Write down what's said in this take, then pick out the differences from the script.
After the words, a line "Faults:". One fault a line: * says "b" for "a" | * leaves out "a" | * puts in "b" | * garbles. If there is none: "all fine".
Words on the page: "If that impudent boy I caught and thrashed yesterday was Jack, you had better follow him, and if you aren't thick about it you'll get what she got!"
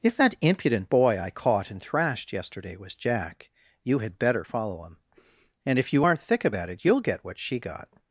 "If that impudent boy I caught and thrashed yesterday was Jack, you had better follow him, and if you aren't thick about it you'll get what she got!"
Faults:
all fine